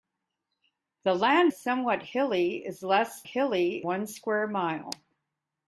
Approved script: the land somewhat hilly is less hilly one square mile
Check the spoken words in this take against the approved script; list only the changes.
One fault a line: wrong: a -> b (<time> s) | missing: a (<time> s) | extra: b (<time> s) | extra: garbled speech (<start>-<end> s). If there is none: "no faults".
no faults